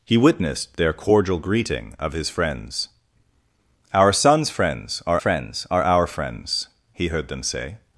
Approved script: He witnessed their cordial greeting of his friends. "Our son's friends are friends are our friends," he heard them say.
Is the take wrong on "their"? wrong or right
right